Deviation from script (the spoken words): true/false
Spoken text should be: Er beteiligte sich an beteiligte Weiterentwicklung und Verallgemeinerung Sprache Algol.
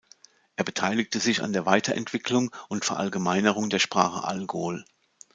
true